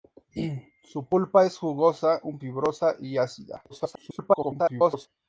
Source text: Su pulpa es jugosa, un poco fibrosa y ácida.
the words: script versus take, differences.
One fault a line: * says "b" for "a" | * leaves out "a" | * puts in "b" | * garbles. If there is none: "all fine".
* leaves out "poco"
* garbles